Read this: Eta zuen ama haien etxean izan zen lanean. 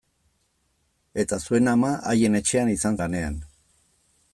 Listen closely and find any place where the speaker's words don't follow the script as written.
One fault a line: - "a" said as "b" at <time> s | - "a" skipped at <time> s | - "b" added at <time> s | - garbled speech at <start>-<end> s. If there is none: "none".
- "zen" skipped at 3.0 s